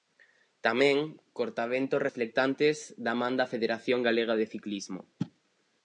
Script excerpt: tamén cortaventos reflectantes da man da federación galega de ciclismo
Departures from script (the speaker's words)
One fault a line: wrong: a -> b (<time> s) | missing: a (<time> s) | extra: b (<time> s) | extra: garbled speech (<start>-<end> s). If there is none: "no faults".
no faults